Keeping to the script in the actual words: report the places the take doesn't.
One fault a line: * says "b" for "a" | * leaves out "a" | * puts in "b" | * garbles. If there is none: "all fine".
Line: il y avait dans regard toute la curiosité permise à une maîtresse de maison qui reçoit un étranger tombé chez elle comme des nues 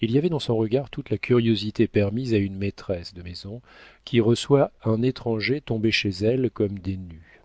* puts in "son"